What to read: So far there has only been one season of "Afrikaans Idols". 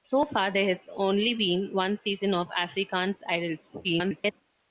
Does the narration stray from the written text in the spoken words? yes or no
yes